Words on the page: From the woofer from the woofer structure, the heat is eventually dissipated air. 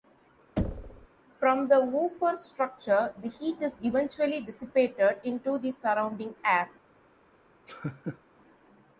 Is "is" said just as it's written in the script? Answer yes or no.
yes